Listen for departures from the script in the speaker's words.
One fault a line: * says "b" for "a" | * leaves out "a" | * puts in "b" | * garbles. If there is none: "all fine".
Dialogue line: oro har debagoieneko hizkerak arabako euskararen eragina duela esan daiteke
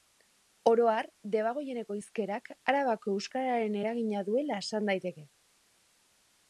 all fine